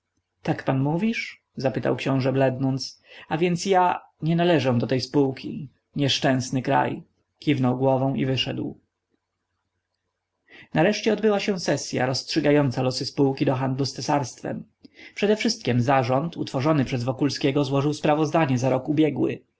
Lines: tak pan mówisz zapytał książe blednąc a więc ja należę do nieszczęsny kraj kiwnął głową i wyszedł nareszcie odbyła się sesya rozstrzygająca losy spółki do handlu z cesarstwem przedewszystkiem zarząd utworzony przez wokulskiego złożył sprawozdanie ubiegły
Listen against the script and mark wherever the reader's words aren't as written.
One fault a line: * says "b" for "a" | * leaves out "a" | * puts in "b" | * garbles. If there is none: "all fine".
* puts in "nie"
* puts in "tej spółki"
* puts in "za rok"